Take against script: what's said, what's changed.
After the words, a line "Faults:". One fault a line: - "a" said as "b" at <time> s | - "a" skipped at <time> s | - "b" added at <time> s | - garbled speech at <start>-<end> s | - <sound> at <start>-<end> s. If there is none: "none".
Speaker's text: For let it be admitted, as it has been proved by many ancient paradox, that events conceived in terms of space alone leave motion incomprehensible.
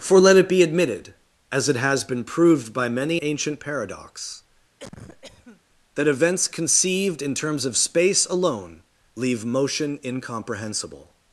For let it be admitted, as it has been proved by many ancient paradox, that events conceived in terms of space alone leave motion incomprehensible.
Faults:
- cough at 4.8-5.6 s